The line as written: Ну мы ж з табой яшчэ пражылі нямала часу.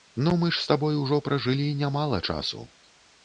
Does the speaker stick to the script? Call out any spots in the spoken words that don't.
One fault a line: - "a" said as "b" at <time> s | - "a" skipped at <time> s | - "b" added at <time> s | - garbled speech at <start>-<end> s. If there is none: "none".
- "яшчэ" said as "ужо" at 1.0 s